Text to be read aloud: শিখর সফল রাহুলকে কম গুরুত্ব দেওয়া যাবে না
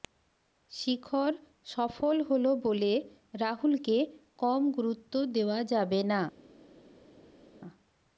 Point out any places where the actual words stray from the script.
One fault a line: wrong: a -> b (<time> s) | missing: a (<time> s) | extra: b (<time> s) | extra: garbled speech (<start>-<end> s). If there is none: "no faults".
extra: হল বলে (2.3 s)